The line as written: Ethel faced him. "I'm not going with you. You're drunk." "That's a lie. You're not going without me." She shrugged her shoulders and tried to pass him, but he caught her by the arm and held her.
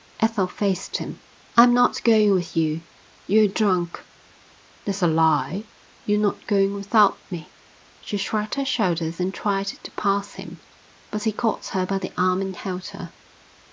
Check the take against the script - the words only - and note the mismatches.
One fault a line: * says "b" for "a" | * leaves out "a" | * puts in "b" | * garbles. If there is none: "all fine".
all fine